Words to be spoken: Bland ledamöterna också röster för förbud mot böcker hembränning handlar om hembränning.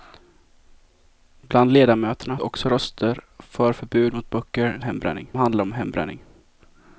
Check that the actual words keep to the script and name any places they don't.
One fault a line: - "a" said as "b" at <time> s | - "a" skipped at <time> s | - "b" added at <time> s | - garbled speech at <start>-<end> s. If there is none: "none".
none